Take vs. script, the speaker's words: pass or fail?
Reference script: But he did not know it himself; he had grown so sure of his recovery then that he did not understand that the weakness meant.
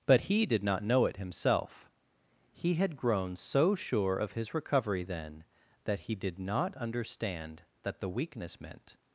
pass